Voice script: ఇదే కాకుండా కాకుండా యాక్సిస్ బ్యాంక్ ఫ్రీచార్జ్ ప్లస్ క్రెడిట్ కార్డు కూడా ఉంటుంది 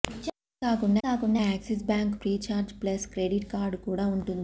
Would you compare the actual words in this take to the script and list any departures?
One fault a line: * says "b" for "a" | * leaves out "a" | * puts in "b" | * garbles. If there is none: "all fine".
all fine